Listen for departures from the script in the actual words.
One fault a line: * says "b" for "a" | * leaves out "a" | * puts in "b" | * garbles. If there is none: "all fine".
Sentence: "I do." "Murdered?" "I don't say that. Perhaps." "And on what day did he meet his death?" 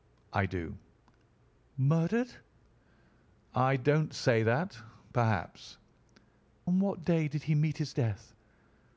* leaves out "And"